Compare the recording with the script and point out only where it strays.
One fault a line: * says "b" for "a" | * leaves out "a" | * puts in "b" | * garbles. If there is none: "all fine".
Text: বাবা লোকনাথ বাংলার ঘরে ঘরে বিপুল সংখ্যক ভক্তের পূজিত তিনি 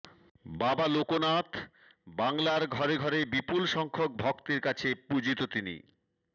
* puts in "কাছে"